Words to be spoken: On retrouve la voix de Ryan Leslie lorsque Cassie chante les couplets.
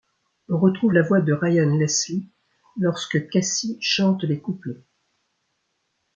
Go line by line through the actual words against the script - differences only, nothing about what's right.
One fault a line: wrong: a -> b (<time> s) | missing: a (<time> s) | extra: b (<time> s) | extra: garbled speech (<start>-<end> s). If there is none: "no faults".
no faults